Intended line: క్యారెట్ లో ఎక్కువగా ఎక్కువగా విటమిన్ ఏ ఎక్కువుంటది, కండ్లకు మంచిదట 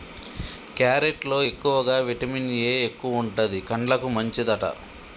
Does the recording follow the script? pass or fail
fail